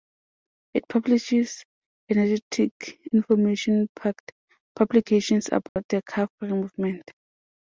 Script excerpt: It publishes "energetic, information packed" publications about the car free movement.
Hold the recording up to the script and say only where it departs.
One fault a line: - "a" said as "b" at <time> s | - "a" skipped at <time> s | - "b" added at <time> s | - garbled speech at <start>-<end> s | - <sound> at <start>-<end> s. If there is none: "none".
- dropout at 5.7-5.8 s